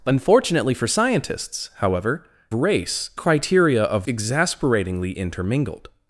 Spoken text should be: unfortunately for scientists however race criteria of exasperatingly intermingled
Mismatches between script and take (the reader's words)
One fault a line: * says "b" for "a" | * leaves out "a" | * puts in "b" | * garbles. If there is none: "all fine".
all fine